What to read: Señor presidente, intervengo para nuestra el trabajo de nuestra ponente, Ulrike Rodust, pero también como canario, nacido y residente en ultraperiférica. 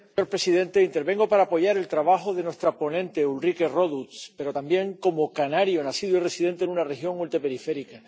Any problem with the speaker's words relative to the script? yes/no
yes